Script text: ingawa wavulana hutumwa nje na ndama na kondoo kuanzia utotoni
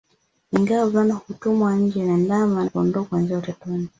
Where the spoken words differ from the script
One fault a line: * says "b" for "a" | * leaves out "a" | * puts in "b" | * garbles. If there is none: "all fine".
* leaves out "na"